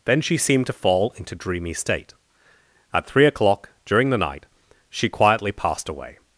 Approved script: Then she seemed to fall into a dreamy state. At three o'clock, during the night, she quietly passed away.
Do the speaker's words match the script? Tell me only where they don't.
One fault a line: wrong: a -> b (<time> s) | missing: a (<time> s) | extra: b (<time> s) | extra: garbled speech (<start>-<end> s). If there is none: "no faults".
missing: a (1.4 s)